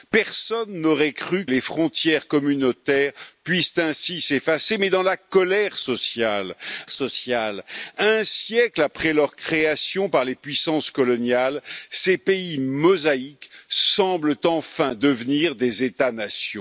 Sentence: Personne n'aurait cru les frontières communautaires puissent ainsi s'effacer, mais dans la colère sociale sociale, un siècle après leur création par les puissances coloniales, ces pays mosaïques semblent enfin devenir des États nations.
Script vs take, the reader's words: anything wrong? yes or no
no